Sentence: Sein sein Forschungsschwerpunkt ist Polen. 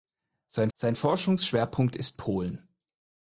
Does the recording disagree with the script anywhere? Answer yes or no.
no